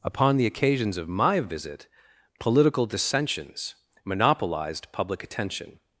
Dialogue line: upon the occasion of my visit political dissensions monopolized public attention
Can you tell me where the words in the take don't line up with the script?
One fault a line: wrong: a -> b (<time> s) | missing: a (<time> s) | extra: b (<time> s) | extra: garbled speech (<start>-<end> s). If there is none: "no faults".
wrong: occasion -> occasions (0.5 s)